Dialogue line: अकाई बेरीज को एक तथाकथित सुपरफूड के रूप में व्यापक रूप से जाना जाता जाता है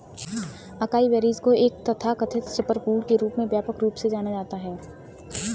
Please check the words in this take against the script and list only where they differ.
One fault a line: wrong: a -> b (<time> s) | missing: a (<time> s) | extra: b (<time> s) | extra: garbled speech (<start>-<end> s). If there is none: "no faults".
missing: जाता (4.6 s)